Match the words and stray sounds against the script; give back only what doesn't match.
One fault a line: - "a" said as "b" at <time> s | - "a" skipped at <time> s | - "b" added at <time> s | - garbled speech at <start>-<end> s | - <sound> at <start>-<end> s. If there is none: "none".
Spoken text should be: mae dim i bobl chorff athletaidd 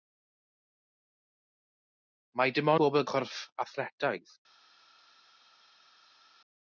none